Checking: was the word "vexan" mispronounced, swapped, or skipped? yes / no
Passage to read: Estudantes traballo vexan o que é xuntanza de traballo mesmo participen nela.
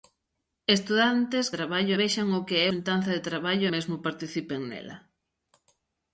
no